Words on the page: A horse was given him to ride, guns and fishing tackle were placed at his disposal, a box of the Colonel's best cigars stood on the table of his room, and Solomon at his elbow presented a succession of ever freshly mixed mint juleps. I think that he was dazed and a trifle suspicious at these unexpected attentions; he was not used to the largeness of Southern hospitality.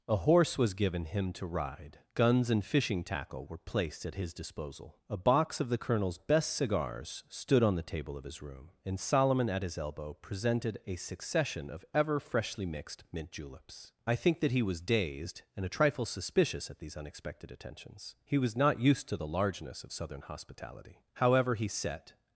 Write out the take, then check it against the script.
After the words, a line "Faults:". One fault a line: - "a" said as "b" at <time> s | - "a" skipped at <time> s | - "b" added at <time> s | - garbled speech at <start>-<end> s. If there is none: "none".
A horse was given him to ride, guns and fishing tackle were placed at his disposal, a box of the Colonel's best cigars stood on the table of his room, and Solomon at his elbow presented a succession of ever freshly mixed mint juleps. I think that he was dazed and a trifle suspicious at these unexpected attentions; he was not used to the largeness of Southern hospitality. However, he set
Faults:
- "However he set" added at 21.1 s